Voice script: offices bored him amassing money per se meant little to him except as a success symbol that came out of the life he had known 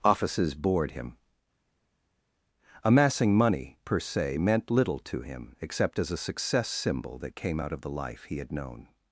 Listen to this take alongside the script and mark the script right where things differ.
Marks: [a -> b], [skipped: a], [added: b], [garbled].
offices bored him amassing money per se meant little to him except as a success symbol that came out of the life he had known